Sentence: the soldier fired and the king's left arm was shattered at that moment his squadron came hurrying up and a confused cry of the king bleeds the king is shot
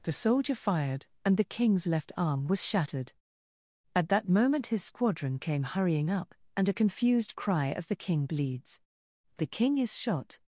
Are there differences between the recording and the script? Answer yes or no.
no